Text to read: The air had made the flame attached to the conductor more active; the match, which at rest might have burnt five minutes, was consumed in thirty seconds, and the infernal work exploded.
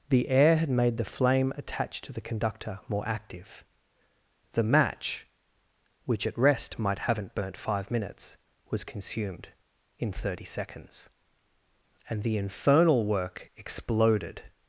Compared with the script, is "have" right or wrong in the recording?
wrong